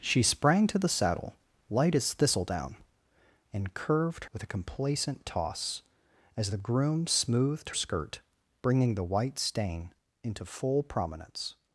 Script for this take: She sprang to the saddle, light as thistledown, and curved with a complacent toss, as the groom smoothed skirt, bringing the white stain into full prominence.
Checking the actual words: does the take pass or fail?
pass